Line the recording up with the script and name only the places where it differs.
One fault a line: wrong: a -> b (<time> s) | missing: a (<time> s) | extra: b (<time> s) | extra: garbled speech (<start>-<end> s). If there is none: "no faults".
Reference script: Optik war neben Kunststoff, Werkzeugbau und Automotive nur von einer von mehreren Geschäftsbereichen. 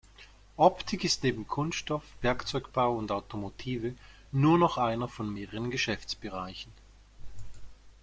wrong: war -> ist (1.0 s)
wrong: von -> noch (4.6 s)